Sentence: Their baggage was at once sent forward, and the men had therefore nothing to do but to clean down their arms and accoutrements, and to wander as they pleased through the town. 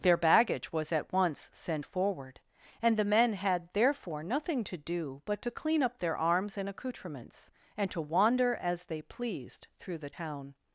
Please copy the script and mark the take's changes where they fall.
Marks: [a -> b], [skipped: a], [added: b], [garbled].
Their baggage was at once sent forward, and the men had therefore nothing to do but to clean [down -> up] their arms and accoutrements, and to wander as they pleased through the town.